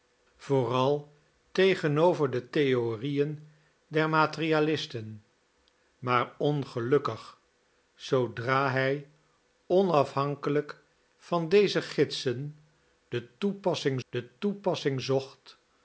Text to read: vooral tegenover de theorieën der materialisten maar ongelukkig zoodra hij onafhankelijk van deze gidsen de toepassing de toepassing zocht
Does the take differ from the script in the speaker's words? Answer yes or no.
no